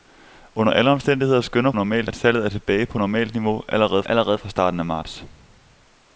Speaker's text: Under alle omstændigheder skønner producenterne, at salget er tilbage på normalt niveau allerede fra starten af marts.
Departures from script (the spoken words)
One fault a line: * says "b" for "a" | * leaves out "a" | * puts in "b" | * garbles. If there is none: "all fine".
* says "normalt" for "producenterne"
* puts in "allerede"